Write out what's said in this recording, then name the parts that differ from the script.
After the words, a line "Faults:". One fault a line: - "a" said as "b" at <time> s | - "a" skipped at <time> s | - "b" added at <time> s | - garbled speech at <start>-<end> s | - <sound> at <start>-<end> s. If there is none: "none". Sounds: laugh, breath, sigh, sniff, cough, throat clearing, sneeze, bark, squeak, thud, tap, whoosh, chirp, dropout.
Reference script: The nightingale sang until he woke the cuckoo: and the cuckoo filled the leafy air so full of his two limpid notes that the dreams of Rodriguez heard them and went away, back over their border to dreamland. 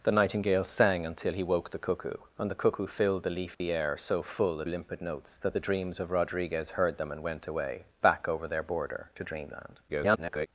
The nightingale sang until he woke the cuckoo: and the cuckoo filled the leafy air so full of limpid notes that the dreams of Rodriguez heard them and went away, back over their border to dreamland. [garbled]
Faults:
- dropout at 3.5-3.6 s
- "his two" skipped at 4.7 s
- garbled speech at 9.9-10.5 s